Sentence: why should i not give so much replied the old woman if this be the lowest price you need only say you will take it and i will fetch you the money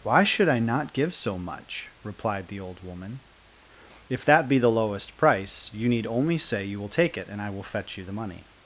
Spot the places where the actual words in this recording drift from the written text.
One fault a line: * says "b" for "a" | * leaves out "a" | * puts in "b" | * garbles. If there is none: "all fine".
* says "that" for "this"